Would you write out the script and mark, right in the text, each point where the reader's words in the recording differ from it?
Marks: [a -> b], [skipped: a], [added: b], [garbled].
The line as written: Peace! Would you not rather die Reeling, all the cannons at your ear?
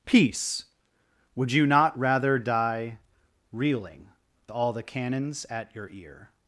Peace! Would you not rather die Reeling, all the cannons at your ear?